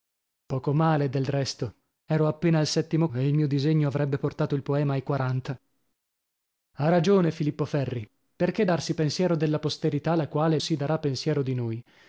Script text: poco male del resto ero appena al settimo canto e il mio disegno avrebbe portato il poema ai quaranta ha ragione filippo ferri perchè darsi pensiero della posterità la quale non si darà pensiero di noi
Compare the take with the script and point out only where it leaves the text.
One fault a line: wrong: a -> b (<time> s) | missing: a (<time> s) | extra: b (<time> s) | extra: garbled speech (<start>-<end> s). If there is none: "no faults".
missing: canto (3.1 s)
missing: non (10.6 s)